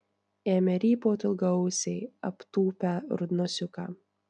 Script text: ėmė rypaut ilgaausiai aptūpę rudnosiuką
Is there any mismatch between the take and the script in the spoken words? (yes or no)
no